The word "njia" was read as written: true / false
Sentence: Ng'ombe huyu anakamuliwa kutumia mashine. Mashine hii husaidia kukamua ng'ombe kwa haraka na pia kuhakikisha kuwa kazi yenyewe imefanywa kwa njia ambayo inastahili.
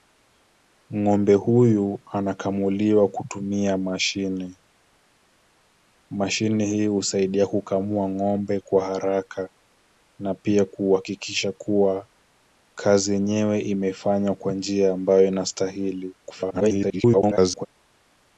true